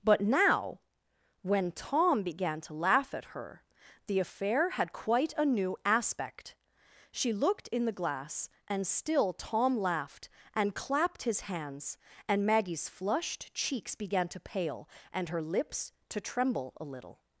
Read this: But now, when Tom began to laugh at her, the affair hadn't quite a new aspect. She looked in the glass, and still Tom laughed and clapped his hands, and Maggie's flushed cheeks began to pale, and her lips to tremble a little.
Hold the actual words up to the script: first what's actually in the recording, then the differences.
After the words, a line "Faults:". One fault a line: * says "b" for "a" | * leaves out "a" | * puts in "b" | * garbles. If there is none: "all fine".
But now, when Tom began to laugh at her, the affair had quite a new aspect. She looked in the glass, and still Tom laughed and clapped his hands, and Maggie's flushed cheeks began to pale, and her lips to tremble a little.
Faults:
* says "had" for "hadn't"